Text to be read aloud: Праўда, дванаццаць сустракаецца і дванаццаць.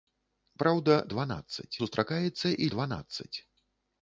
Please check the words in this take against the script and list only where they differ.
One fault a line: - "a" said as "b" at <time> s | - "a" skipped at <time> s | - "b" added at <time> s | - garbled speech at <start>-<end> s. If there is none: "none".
none